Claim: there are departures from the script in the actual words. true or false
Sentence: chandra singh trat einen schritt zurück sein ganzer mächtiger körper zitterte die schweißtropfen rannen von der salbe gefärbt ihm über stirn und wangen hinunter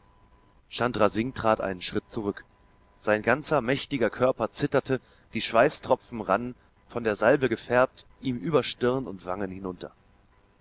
false